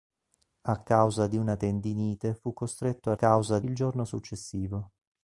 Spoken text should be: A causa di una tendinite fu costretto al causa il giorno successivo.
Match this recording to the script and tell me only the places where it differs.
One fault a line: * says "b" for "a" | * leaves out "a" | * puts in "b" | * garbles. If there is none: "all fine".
all fine